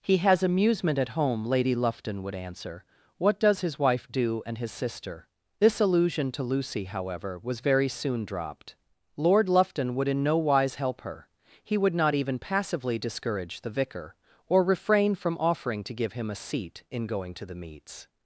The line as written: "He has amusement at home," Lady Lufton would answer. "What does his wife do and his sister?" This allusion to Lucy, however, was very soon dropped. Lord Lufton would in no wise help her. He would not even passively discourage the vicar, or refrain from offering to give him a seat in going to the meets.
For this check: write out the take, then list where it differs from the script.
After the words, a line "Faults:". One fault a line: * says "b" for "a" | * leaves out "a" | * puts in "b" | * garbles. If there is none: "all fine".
"He has amusement at home," Lady Lufton would answer. "What does his wife do and his sister?" This allusion to Lucy, however, was very soon dropped. Lord Lufton would in no wise help her. He would not even passively discourage the vicar, or refrain from offering to give him a seat in going to the meets.
Faults:
all fine